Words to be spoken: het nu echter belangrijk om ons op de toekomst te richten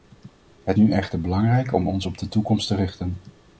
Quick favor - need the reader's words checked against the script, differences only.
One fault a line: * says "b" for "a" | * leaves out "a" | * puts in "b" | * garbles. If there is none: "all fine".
all fine